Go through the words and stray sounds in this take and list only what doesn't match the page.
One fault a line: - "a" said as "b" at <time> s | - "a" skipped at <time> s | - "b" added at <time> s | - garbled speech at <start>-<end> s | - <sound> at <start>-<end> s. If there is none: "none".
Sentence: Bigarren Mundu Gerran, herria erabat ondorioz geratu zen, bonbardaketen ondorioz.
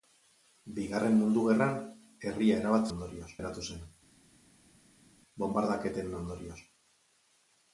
none